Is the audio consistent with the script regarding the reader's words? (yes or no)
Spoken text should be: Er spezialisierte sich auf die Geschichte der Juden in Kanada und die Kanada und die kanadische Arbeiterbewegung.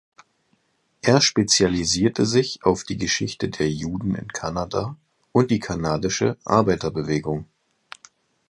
no